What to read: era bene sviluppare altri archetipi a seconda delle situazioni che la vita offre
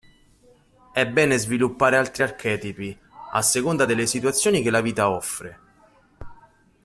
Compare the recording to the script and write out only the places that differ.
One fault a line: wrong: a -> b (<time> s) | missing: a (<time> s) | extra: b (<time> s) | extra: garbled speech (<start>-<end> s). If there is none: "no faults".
wrong: era -> è (0.9 s)